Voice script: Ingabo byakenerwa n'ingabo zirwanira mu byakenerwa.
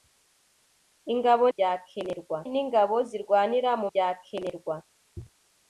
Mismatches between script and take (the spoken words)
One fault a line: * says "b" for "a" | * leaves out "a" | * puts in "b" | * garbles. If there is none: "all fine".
all fine